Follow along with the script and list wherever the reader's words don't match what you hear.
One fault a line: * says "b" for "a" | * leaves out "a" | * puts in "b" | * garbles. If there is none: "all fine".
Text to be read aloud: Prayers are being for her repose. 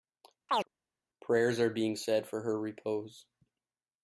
* puts in "said"